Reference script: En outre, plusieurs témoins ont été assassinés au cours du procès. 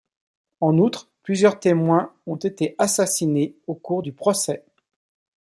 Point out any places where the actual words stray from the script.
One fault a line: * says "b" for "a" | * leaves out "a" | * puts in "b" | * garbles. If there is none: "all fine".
all fine